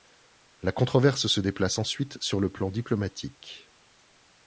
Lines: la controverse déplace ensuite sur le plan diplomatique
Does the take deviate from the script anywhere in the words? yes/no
yes